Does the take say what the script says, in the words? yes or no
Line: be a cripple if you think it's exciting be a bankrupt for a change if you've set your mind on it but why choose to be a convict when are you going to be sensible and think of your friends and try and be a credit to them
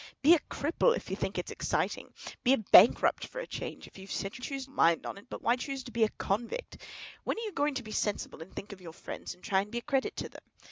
no